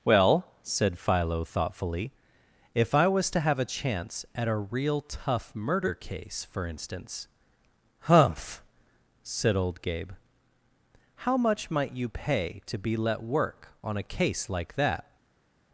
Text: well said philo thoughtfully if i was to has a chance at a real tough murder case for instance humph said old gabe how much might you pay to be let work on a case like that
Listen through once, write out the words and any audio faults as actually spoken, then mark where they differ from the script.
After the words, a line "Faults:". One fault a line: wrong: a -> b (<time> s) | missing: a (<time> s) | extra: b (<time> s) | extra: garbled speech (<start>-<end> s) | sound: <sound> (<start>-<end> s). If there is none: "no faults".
well said philo thoughtfully if i was to have a chance at a real tough murder case for instance humph said old gabe how much might you pay to be let work on a case like that
Faults:
wrong: has -> have (3.4 s)